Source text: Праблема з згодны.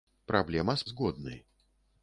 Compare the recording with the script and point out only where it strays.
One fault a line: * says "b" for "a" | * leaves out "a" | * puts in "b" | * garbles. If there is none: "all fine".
all fine